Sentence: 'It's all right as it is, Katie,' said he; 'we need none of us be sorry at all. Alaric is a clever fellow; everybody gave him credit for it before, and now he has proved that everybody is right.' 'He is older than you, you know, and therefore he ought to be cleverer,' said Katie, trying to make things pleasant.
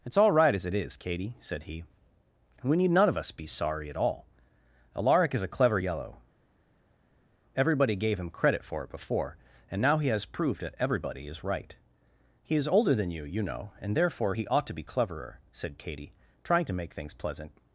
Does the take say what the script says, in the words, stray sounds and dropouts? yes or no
no